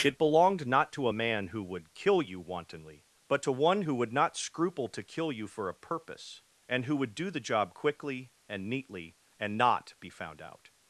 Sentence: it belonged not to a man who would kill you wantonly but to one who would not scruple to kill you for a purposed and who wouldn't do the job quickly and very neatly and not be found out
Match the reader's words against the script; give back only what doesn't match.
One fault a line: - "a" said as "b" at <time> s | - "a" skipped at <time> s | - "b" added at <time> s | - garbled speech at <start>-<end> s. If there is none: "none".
- "purposed" said as "purpose" at 5.7 s
- "wouldn't" said as "would" at 7.0 s
- "very" skipped at 8.7 s